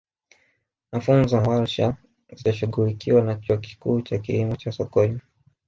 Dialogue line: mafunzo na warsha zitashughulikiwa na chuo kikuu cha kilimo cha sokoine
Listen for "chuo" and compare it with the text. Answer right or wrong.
right